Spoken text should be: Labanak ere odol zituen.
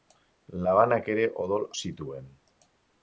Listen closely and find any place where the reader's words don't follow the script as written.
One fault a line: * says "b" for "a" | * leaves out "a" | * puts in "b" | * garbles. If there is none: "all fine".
all fine